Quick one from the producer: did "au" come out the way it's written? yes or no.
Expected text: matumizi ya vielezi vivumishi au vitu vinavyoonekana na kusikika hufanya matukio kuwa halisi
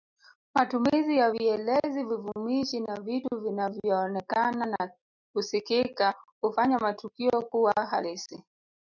no